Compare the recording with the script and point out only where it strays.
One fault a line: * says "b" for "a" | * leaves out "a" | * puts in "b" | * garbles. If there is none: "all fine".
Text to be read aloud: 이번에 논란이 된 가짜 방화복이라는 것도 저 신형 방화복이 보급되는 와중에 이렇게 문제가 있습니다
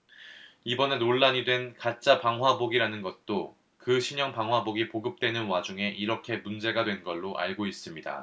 * says "그" for "저"
* puts in "된 걸로 알고"